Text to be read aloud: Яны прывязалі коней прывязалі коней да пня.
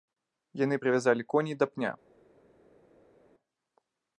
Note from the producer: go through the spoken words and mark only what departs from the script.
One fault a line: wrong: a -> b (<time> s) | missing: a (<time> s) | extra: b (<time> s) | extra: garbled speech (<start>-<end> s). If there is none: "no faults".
missing: прывязалі коней (1.5 s)